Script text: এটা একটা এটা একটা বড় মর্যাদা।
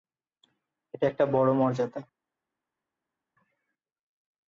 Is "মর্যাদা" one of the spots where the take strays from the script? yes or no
no